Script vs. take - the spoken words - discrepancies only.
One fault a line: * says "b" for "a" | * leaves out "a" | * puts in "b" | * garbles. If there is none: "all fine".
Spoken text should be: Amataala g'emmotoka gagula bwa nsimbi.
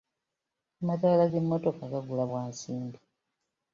all fine